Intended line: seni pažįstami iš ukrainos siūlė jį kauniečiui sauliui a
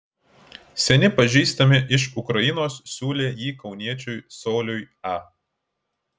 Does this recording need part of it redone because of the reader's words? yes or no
no